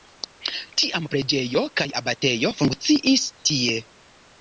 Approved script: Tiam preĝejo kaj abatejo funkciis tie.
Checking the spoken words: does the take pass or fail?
pass